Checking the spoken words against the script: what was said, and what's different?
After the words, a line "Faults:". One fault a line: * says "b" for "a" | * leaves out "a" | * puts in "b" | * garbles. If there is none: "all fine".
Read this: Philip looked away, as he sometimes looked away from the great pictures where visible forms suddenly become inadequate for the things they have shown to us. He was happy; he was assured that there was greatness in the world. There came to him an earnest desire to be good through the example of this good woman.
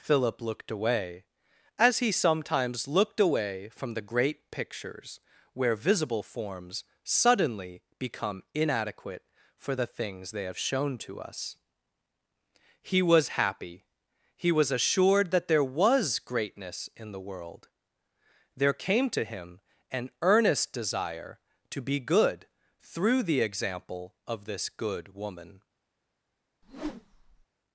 Philip looked away, as he sometimes looked away from the great pictures where visible forms suddenly become inadequate for the things they have shown to us. He was happy; he was assured that there was greatness in the world. There came to him an earnest desire to be good through the example of this good woman.
Faults:
all fine